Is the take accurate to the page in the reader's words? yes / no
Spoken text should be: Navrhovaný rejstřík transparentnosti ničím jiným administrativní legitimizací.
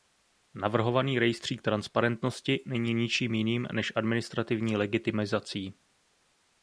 no